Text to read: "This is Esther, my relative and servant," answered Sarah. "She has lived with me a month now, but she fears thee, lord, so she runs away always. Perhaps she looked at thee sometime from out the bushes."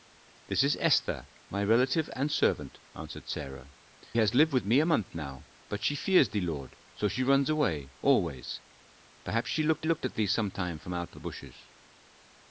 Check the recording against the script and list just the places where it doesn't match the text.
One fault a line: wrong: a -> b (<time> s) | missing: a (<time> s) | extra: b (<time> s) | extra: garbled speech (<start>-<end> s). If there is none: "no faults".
missing: She (3.7 s)
extra: looked (9.8 s)